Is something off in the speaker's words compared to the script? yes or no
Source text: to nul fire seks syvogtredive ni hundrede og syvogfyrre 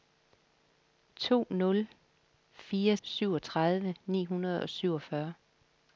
yes